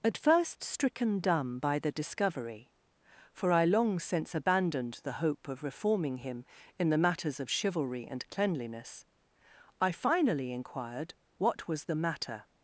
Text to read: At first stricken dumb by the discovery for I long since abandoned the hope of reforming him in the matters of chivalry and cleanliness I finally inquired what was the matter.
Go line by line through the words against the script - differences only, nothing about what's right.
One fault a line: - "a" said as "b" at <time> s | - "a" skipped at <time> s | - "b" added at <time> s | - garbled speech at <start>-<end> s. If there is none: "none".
none